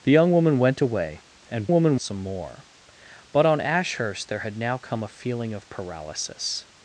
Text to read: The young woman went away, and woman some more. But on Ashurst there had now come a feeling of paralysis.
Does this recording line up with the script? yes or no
yes